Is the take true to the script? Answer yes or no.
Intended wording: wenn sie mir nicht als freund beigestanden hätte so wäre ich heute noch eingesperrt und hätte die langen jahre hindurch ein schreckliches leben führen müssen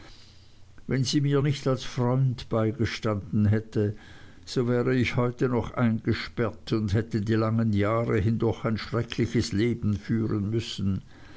yes